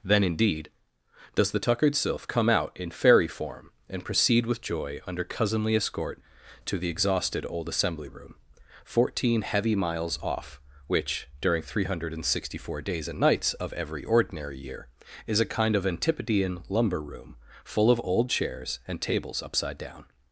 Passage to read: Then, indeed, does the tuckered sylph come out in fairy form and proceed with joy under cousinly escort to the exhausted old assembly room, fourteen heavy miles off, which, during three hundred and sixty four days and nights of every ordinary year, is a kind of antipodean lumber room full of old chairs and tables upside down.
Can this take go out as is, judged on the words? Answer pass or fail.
pass